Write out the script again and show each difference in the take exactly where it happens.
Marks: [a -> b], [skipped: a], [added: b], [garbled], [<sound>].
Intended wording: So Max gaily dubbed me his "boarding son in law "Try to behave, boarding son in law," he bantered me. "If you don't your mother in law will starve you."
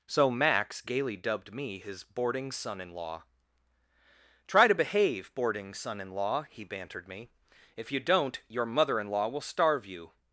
So Max gaily dubbed me his "boarding son in law "Try to behave, boarding son in law," he bantered me. "If you don't your mother in law will starve you."